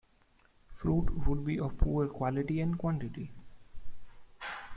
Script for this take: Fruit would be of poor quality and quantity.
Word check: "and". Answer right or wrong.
right